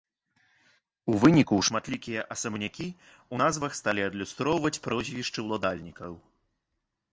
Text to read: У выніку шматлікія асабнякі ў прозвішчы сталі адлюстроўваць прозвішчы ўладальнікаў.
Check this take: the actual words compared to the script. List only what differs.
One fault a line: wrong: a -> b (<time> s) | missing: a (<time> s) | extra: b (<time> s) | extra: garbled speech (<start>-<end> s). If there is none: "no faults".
wrong: прозвішчы -> назвах (3.4 s)